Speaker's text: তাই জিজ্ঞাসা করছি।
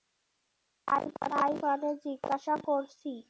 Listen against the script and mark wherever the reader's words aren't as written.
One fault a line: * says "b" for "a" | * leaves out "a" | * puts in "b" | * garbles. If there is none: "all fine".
* puts in "মানে"